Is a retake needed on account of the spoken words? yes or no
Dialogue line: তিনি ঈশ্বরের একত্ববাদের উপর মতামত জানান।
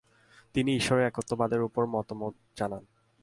no